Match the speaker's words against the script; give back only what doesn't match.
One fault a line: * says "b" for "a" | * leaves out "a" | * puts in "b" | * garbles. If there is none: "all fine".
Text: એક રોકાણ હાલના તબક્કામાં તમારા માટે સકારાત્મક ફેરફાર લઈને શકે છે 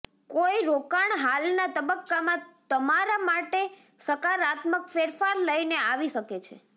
* says "કોઈ" for "એક"
* puts in "આવી"